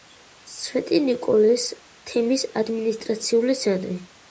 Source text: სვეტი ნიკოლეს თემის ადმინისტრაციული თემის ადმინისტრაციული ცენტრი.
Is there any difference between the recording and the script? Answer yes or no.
yes